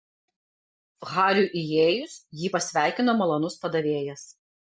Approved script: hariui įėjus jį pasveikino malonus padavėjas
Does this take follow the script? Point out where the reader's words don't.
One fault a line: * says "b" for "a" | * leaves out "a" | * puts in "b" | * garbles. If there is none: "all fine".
all fine